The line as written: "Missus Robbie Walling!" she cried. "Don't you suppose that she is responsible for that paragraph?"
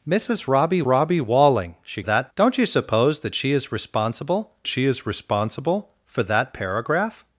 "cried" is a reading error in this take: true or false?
true